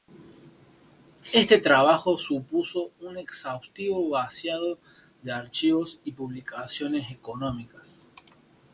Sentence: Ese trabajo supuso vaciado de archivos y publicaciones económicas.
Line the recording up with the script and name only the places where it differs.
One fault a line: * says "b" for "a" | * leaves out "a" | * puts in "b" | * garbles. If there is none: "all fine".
* says "Este" for "Ese"
* puts in "un exhaustivo"